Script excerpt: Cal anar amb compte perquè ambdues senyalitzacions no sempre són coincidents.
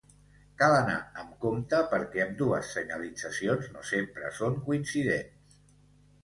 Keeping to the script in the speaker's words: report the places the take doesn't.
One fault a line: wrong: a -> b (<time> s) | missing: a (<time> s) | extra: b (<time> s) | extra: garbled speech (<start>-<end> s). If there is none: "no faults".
no faults